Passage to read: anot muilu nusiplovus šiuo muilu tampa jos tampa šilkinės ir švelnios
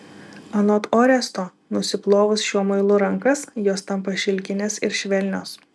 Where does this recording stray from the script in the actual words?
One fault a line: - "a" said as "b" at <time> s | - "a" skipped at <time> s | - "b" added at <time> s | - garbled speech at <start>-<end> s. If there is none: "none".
- "muilu" said as "oresto" at 0.9 s
- "tampa" said as "rankas" at 3.0 s